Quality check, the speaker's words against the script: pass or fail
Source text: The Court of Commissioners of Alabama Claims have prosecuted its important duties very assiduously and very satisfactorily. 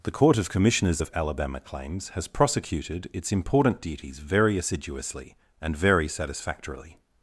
fail